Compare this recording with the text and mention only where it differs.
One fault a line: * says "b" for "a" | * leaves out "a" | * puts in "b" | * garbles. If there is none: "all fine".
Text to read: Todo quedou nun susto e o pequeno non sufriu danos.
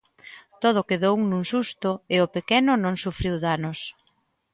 all fine